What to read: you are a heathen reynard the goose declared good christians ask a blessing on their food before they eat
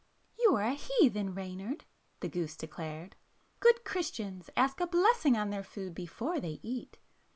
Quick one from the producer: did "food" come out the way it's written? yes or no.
yes